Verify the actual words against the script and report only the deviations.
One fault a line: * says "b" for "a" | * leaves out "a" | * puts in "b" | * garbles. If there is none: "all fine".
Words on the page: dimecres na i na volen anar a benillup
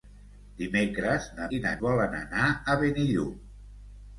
all fine